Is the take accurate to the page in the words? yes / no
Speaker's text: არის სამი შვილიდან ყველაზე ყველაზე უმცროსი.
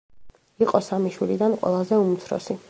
no